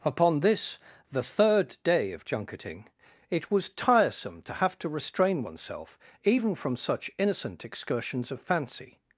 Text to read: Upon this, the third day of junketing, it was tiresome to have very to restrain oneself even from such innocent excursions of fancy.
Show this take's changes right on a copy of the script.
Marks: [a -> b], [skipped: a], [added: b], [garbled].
Upon this, the third day of junketing, it was tiresome to have [skipped: very] to restrain oneself even from such innocent excursions of fancy.